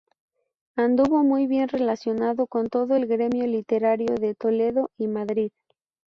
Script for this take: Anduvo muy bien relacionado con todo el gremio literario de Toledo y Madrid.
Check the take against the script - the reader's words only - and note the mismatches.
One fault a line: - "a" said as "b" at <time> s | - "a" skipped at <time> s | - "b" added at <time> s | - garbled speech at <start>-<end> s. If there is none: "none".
none